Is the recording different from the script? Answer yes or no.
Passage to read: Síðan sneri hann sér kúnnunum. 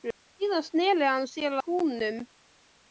no